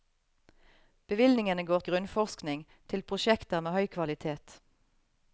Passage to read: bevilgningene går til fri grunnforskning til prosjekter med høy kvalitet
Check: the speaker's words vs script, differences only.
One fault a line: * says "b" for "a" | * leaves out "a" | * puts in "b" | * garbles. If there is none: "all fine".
* leaves out "til fri"